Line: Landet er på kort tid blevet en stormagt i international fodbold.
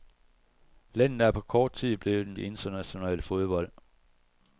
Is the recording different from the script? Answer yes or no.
yes